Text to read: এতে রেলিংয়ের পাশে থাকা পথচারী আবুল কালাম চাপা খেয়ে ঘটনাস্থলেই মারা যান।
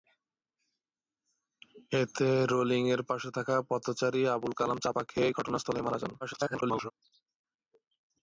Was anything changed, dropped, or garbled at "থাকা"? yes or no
no